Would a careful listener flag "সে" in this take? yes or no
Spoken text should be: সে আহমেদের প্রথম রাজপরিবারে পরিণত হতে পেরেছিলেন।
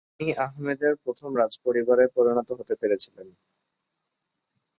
yes